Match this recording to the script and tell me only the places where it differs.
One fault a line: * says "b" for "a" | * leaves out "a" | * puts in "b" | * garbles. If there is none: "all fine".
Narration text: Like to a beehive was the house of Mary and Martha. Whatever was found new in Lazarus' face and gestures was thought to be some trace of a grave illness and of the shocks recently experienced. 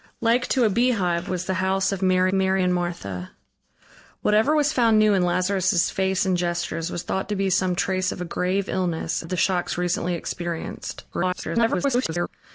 * puts in "Mary"
* leaves out "and"
* garbles